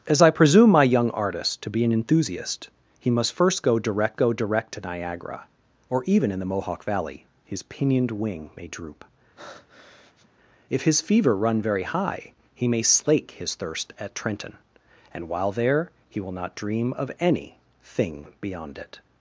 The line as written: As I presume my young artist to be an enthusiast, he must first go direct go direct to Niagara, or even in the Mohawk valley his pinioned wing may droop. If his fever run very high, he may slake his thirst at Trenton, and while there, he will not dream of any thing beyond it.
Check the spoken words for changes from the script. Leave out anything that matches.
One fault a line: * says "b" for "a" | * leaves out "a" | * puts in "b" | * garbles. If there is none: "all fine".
all fine